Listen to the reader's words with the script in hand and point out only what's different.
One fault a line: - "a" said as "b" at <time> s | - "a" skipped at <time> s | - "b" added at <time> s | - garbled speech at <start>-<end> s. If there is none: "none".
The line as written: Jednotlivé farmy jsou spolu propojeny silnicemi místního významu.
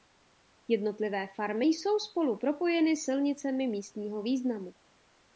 none